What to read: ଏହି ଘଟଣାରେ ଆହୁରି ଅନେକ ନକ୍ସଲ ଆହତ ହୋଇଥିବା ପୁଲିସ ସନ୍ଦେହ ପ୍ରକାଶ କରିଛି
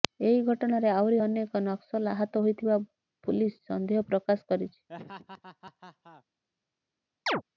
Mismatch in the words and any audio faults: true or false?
true